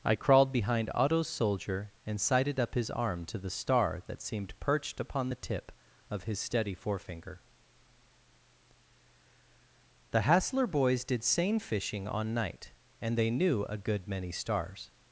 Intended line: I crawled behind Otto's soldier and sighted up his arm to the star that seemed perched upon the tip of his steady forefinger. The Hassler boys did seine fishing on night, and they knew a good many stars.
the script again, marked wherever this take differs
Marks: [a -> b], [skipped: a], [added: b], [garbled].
I crawled behind Otto's soldier and sighted up his arm to the star that seemed perched upon the tip of his steady forefinger. The Hassler boys did seine fishing on night, and they knew a good many stars.